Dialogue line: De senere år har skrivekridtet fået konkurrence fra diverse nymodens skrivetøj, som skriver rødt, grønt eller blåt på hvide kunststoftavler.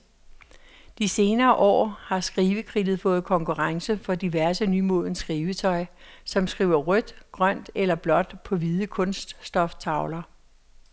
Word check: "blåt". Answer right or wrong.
right